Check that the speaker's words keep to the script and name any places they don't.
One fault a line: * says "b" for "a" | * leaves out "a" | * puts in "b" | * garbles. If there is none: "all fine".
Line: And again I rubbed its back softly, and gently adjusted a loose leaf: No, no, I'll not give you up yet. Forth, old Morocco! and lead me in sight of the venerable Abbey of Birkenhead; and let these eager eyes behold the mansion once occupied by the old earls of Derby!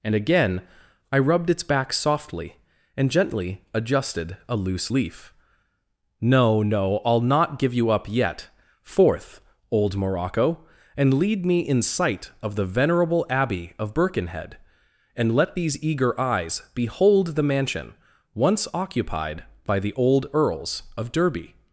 all fine